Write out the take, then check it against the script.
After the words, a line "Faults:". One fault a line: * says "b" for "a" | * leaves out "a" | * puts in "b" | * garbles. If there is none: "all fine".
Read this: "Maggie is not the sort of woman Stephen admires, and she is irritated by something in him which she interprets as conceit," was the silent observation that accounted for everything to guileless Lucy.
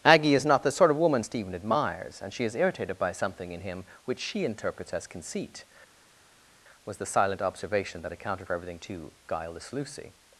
"Aggie is not the sort of woman Stephen admires, and she is irritated by something in him which she interprets as conceit," was the silent observation that accounted for everything to guileless Lucy.
Faults:
* says "Aggie" for "Maggie"